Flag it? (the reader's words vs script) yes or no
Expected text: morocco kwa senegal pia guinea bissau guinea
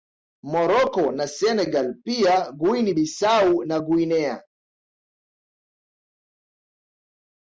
yes